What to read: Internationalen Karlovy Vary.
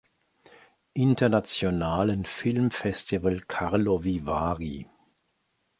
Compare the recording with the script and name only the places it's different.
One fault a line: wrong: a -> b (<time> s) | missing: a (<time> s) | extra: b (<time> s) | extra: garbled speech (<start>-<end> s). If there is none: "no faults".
extra: Filmfestival (2.2 s)